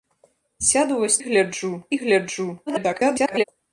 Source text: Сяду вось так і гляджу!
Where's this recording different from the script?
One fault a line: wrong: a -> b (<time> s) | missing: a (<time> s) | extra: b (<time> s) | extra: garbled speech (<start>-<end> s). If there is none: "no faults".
wrong: так -> гляджу (1.2 s)
extra: garbled speech (2.7-3.4 s)